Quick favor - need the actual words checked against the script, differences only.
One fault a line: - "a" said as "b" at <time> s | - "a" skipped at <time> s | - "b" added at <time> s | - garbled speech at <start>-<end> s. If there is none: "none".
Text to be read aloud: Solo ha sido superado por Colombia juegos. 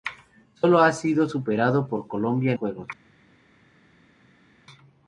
none